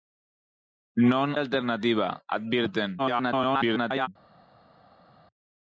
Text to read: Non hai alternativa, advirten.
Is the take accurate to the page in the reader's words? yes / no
no